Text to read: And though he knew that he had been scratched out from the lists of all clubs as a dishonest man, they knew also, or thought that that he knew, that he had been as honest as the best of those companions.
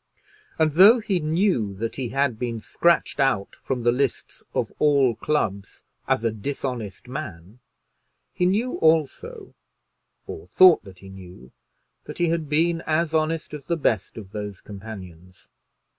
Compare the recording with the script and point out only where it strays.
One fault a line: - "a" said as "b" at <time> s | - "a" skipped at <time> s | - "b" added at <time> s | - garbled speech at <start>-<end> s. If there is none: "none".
- "they" said as "he" at 8.3 s
- "that" skipped at 11.0 s